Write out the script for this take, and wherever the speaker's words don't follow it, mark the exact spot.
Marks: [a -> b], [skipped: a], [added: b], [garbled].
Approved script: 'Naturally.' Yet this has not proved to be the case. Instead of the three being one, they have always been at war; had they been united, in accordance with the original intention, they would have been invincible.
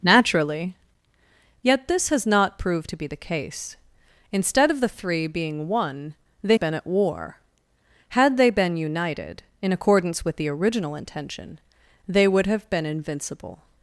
'Naturally.' Yet this has not proved to be the case. Instead of the three being one, they [skipped: have always] been at war; had they been united, in accordance with the original intention, they would have been invincible.